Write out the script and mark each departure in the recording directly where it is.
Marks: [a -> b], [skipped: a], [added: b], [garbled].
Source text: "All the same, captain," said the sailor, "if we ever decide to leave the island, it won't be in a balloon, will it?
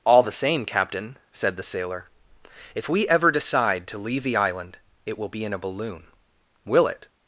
"All the same, captain," said the sailor, "if we ever decide to leave the island, it [won't -> will] be in a balloon, will it?